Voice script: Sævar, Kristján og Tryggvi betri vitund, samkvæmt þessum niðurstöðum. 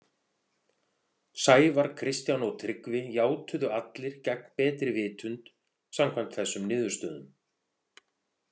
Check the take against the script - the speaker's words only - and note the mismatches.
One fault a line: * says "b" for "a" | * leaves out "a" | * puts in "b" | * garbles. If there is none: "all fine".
* puts in "játuðu allir gegn"